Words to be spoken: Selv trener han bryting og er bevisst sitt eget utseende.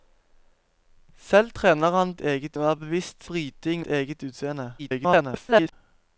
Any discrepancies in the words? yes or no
yes